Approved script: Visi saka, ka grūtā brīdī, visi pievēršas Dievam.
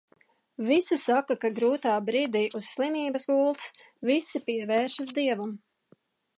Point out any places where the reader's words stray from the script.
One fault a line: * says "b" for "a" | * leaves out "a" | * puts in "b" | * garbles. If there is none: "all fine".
* puts in "uz slimības gultas"